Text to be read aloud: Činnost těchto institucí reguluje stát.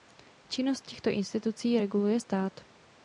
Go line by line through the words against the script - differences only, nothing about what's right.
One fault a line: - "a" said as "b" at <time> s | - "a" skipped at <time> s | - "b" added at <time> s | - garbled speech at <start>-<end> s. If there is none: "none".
none